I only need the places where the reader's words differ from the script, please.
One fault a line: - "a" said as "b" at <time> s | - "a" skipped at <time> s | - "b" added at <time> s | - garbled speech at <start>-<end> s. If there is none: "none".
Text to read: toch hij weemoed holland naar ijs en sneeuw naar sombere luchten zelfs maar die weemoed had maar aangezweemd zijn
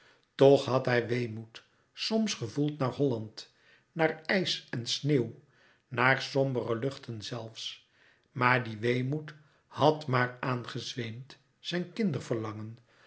- "had" added at 0.7 s
- "soms gevoeld naar" added at 1.9 s